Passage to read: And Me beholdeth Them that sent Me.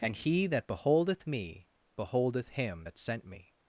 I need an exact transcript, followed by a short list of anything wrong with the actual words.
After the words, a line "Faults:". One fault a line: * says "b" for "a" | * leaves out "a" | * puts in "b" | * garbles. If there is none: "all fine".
And He that beholdeth Me beholdeth Him that sent Me.
Faults:
* puts in "He that beholdeth"
* says "Him" for "Them"